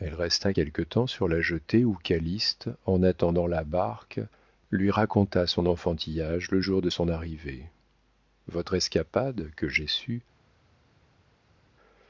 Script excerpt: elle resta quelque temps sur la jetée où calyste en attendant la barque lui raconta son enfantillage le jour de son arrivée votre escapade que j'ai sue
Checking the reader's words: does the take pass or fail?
pass